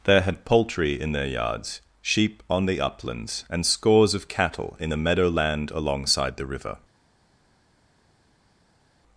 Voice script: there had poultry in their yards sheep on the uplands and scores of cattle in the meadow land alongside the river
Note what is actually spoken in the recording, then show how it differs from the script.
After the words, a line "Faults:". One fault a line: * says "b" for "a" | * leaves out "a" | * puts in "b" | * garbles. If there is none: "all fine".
there had poultry in their yards sheep on the uplands and scores of cattle in the meadow land alongside the river
Faults:
all fine